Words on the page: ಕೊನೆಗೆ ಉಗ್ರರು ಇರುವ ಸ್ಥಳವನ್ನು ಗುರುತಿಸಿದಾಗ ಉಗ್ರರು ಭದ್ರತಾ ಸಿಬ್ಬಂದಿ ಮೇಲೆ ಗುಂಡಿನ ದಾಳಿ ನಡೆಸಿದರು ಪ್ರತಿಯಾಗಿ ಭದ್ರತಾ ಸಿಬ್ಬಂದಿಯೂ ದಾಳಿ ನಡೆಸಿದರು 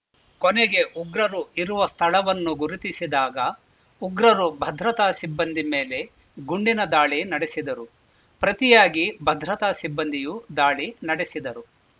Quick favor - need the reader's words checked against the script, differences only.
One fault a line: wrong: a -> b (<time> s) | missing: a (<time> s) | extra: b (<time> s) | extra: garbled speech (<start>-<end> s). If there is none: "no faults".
no faults